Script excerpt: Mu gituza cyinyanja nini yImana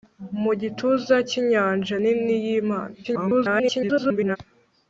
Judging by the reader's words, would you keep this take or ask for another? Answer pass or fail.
fail